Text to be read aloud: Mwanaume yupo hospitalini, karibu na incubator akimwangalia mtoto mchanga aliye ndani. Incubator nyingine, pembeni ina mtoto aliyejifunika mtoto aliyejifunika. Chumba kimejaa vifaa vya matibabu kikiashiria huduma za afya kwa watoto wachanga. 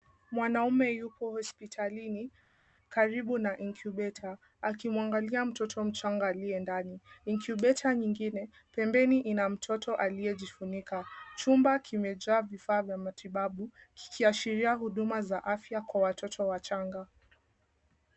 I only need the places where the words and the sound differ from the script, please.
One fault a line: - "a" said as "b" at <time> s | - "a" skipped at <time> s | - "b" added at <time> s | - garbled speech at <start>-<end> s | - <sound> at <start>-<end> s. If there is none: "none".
- "mtoto aliyejifunika" skipped at 11.0 s